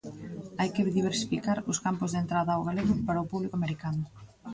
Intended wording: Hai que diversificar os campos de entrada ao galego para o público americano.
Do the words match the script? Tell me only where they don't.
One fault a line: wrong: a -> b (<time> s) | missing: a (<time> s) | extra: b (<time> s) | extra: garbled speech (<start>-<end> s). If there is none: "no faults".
no faults